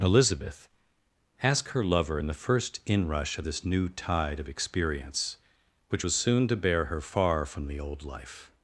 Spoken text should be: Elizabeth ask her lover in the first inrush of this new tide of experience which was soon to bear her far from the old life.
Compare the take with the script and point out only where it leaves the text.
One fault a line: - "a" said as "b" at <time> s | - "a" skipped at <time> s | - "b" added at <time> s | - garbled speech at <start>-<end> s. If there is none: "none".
none